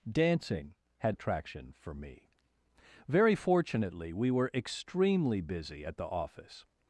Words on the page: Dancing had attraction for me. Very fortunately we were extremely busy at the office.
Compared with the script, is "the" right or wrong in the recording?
right